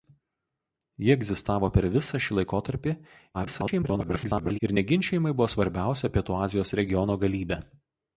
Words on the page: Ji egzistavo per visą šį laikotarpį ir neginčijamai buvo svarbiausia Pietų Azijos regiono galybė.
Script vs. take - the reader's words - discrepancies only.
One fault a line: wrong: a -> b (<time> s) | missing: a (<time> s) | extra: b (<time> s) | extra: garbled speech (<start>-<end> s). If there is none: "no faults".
extra: garbled speech (3.3-4.6 s)